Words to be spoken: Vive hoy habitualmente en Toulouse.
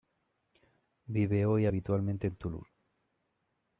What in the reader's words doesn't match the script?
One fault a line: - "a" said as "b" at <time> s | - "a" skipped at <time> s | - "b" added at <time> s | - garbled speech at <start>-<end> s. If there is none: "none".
none